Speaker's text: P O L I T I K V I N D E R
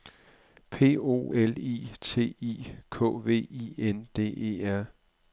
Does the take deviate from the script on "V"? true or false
false